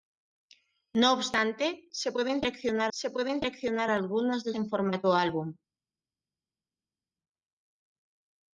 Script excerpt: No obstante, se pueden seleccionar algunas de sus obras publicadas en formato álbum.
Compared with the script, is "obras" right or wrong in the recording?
wrong